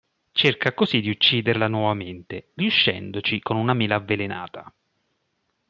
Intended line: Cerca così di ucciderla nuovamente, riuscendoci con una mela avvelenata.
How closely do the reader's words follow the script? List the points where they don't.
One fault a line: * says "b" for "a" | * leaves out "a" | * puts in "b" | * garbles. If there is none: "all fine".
all fine